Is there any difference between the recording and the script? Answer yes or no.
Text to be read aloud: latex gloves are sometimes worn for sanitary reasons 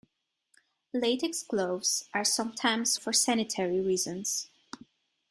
yes